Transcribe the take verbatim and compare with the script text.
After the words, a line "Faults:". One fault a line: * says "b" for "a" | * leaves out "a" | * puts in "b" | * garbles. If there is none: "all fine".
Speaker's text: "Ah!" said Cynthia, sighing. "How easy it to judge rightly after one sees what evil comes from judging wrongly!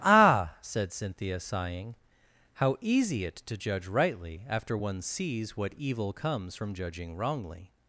"Ah!" said Cynthia, sighing. "How easy it to judge rightly after one sees what evil comes from judging wrongly!
Faults:
all fine